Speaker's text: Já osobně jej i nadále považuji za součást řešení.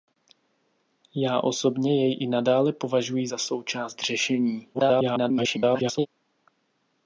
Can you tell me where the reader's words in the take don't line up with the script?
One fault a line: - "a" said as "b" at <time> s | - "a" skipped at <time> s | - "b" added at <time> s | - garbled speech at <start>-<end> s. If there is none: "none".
- garbled speech at 4.7-6.1 s